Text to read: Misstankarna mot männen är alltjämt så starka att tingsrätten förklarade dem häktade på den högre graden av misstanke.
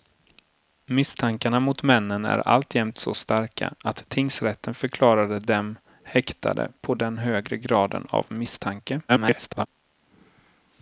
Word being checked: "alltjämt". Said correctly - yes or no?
yes